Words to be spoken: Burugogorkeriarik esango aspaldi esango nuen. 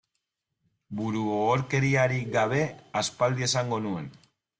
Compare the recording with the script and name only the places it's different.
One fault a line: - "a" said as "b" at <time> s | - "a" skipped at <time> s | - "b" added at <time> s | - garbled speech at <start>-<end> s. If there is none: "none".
- "esango" said as "gabe" at 2.4 s